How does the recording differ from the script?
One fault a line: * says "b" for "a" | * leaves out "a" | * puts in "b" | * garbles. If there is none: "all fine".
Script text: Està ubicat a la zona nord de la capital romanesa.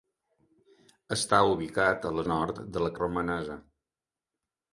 * leaves out "zona"
* leaves out "capital"